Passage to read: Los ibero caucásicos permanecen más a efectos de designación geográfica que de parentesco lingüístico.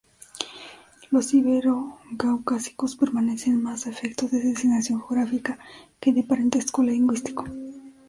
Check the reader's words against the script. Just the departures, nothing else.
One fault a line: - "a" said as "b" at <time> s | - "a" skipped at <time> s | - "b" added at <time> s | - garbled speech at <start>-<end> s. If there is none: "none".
none